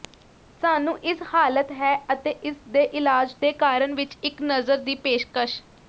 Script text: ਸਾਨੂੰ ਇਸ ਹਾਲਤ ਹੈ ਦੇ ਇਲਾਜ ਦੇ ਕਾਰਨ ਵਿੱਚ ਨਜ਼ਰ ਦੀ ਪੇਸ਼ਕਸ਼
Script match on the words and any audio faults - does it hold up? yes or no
no